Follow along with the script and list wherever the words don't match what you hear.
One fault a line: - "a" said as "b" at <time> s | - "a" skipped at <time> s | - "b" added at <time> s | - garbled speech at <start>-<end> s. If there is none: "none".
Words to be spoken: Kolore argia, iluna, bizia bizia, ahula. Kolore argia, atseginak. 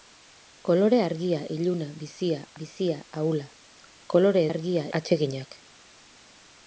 none